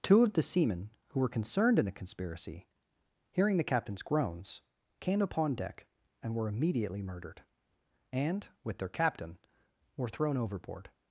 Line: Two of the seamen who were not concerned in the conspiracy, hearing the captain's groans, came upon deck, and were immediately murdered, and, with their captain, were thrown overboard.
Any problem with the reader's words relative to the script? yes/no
yes